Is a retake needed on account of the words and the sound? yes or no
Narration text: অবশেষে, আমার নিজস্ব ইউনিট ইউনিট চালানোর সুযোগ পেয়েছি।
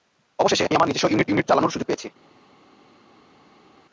no